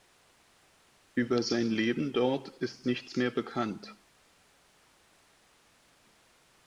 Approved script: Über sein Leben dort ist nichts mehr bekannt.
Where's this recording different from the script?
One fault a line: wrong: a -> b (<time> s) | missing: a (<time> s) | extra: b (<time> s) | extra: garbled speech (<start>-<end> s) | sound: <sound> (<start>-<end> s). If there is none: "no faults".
no faults